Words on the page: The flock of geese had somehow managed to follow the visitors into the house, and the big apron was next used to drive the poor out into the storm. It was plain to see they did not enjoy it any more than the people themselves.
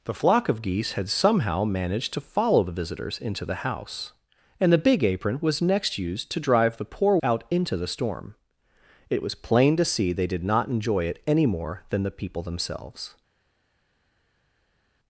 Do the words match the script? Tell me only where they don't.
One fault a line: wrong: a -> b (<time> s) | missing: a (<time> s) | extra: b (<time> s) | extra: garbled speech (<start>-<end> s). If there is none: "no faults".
no faults